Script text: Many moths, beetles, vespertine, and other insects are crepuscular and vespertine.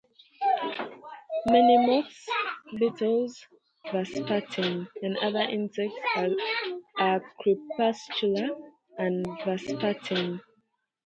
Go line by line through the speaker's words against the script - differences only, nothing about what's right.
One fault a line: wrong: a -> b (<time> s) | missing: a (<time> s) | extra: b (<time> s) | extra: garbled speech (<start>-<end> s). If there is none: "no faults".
no faults